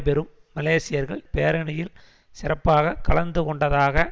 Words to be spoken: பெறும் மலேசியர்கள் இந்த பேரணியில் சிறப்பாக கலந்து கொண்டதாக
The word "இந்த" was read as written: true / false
false